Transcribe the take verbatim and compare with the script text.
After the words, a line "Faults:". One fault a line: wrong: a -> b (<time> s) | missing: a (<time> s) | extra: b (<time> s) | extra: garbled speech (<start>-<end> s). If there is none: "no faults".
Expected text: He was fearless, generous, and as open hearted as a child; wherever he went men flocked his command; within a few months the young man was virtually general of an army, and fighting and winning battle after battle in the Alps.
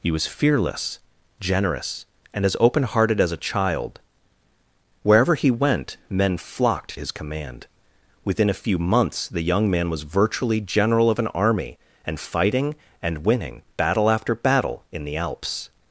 He was fearless, generous, and as open hearted as a child; wherever he went men flocked his command; within a few months the young man was virtually general of an army, and fighting and winning battle after battle in the Alps.
Faults:
no faults